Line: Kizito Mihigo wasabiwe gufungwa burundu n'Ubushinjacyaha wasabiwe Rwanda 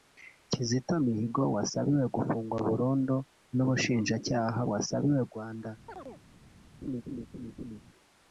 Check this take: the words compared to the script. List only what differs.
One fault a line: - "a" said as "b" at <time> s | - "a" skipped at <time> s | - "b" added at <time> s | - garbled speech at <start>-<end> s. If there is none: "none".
none